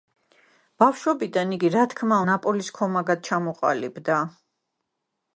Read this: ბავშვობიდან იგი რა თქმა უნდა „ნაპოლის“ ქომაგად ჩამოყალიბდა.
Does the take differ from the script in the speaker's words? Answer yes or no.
yes